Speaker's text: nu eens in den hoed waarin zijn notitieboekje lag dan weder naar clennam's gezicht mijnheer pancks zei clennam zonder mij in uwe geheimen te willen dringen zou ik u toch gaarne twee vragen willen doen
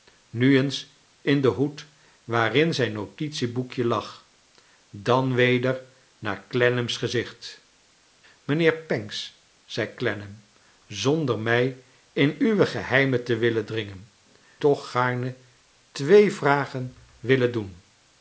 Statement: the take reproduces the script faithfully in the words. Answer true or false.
false